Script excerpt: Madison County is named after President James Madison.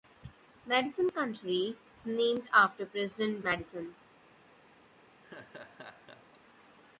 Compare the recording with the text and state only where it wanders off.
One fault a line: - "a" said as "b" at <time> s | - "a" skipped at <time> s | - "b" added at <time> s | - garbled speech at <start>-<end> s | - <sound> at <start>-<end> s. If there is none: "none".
- "is" skipped at 1.8 s
- "James" skipped at 3.4 s
- laugh at 5.2-6.4 s